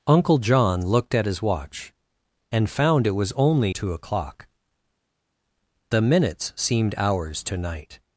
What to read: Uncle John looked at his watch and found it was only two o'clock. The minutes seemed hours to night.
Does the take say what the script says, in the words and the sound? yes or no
yes